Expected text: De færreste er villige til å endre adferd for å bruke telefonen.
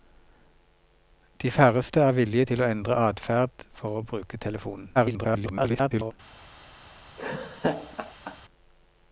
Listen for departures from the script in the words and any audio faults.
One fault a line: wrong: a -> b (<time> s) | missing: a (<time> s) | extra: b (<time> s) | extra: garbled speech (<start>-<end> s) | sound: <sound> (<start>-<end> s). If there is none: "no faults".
extra: garbled speech (5.0-6.1 s)
sound: laugh (7.2-8.4 s)